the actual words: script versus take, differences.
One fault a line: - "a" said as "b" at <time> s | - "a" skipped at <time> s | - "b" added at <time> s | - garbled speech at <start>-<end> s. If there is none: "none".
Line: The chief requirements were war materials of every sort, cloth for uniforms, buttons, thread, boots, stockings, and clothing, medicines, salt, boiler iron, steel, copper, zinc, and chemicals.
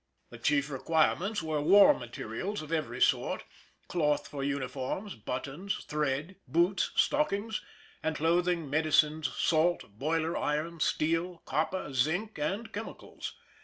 none